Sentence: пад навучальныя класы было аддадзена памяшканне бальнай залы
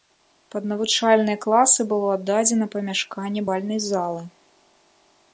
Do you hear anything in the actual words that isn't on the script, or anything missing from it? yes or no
no